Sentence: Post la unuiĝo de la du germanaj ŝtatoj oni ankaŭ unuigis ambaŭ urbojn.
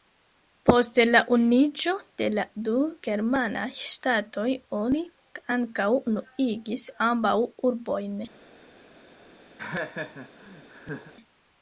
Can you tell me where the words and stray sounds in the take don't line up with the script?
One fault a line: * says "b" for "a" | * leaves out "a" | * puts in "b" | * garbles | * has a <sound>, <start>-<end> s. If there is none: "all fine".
* has a laugh, 9.6-11.1 s